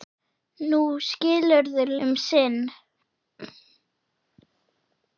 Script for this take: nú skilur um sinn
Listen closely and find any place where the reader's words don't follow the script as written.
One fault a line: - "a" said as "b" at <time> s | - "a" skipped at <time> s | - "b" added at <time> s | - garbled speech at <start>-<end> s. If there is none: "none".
none